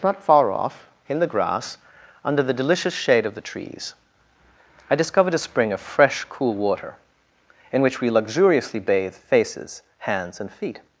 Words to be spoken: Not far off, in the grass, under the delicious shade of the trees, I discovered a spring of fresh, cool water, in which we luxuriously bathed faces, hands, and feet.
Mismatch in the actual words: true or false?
false